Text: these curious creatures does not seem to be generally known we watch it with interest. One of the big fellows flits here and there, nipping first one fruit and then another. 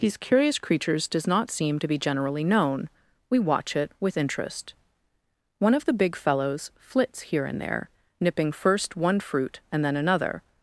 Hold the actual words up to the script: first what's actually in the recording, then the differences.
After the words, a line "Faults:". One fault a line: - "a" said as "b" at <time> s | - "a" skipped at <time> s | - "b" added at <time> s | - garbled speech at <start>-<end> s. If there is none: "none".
these curious creatures does not seem to be generally known we watch it with interest. One of the big fellows flits here and there, nipping first one fruit and then another.
Faults:
none